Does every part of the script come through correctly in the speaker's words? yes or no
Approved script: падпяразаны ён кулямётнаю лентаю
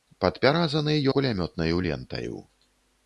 no